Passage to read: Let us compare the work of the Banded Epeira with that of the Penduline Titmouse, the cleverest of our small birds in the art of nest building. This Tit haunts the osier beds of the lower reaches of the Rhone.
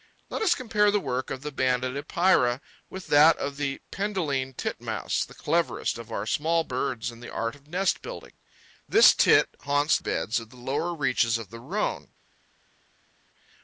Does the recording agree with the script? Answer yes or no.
no